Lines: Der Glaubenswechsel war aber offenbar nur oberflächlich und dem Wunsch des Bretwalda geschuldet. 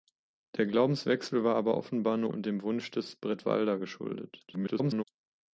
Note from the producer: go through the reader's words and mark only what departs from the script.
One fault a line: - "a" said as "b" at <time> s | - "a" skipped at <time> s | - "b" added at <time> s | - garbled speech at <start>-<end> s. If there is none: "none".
- "oberflächlich" skipped at 2.3 s
- garbled speech at 4.5-5.0 s